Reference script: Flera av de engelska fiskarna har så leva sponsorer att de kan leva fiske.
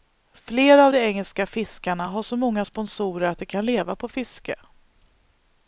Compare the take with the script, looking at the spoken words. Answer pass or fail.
fail